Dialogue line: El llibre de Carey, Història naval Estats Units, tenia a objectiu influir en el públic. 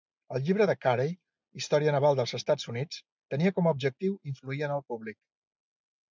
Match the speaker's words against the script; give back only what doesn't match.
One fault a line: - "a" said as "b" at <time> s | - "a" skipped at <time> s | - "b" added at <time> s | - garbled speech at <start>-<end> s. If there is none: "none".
- "dels" added at 2.2 s
- "com" added at 3.6 s